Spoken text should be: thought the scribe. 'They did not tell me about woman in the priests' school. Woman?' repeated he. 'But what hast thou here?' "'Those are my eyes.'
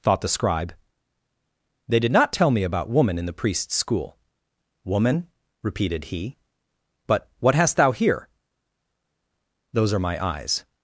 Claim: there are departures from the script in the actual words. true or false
false